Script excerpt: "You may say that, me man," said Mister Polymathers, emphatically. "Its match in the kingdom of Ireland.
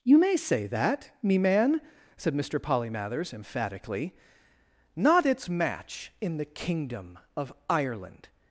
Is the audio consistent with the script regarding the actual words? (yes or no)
no